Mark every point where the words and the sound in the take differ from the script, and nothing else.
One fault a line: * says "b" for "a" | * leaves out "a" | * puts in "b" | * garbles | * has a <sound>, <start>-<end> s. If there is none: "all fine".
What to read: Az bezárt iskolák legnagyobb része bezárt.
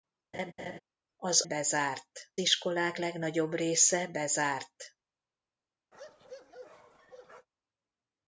* has a laugh, 0.3-0.8 s
* has a bark, 5.9-7.5 s